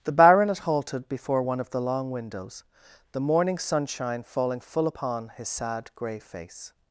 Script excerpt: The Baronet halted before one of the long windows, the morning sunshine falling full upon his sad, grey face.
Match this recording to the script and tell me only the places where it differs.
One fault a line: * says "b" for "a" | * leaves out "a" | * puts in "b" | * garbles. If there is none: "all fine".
all fine